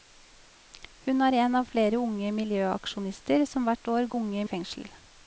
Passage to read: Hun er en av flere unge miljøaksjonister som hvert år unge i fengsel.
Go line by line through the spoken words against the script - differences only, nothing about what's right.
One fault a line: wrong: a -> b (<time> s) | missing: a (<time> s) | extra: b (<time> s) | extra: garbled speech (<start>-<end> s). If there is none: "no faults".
no faults